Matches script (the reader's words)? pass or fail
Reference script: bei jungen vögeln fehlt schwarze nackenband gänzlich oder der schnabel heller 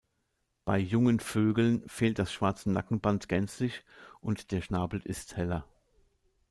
fail